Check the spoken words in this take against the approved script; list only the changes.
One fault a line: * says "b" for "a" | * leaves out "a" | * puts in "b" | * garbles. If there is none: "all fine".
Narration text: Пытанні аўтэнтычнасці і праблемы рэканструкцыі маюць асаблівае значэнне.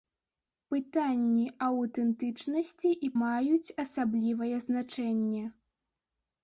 * leaves out "праблемы рэканструкцыі"